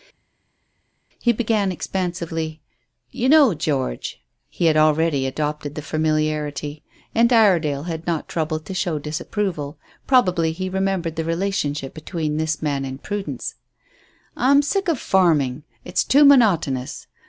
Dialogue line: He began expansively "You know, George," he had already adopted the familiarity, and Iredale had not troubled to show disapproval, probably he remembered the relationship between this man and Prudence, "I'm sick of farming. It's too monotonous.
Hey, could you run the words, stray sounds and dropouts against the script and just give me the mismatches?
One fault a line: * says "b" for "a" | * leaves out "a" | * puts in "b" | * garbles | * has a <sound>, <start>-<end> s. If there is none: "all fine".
all fine